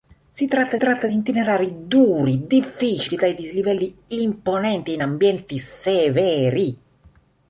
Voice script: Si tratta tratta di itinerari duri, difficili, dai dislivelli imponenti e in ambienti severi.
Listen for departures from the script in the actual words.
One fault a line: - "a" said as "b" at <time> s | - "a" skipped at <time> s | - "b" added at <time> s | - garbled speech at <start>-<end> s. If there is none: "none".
none